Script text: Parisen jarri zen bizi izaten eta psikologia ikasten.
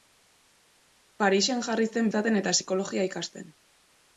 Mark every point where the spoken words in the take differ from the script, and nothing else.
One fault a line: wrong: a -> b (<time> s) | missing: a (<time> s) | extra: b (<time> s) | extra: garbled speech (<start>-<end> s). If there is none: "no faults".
missing: bizi (2.1 s)